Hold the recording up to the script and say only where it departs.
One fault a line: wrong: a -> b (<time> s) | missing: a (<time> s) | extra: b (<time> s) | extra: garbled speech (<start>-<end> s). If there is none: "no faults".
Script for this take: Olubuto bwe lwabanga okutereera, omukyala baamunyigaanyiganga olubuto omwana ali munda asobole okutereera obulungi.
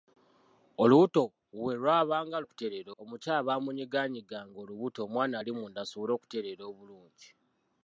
no faults